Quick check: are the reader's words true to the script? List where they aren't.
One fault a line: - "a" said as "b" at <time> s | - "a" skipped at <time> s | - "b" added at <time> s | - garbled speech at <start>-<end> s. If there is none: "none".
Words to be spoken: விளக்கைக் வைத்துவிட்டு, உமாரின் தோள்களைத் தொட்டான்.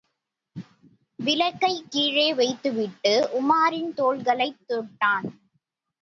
- "கீழே" added at 1.9 s